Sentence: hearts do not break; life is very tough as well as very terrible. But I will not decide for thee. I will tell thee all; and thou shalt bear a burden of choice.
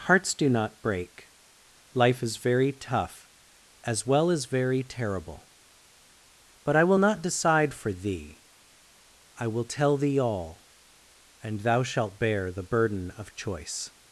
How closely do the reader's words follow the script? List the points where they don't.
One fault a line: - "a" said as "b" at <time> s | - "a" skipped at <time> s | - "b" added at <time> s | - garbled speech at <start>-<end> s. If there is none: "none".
- "a" said as "the" at 12.5 s